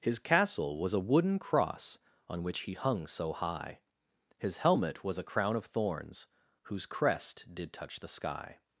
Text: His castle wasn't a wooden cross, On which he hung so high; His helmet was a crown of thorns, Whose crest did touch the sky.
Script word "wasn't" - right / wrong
wrong